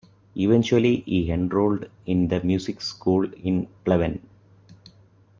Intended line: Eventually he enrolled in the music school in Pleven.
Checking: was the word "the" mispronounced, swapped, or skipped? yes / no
no